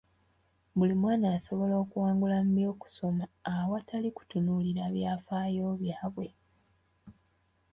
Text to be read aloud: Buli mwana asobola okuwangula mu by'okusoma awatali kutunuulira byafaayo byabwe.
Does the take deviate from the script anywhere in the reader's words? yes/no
no